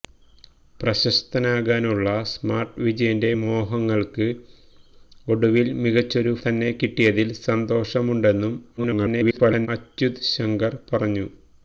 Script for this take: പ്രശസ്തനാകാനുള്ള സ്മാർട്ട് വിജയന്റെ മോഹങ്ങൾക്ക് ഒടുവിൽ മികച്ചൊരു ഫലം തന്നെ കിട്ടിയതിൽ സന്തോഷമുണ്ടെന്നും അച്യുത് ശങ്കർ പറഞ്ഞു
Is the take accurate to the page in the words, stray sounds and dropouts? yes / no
no